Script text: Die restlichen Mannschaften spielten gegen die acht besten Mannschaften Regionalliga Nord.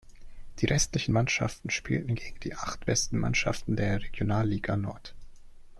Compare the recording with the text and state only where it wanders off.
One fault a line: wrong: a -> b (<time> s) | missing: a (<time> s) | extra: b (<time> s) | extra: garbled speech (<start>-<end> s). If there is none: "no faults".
extra: der (3.8 s)